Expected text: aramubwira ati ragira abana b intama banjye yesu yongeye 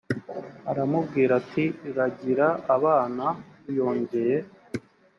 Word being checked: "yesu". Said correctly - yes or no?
no